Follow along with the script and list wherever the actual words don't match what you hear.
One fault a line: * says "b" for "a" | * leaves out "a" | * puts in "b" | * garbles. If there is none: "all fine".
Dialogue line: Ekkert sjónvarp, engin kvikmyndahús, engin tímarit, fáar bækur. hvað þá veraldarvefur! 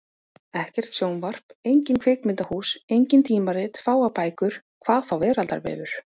all fine